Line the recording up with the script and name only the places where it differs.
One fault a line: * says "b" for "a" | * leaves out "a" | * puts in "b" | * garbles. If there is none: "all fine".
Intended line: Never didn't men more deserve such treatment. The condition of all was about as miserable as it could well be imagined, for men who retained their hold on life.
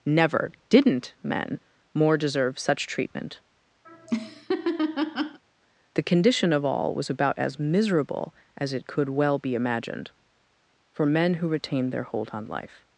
all fine